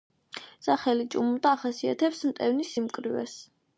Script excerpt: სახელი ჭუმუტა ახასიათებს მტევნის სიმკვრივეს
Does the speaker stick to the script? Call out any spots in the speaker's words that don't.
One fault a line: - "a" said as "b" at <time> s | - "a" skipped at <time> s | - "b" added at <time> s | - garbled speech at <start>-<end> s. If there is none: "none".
none